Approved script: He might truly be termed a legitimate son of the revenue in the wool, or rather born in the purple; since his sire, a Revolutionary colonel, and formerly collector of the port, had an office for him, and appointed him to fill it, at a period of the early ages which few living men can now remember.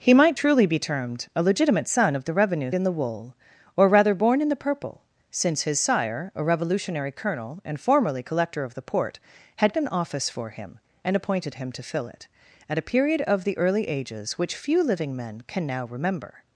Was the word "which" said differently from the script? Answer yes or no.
no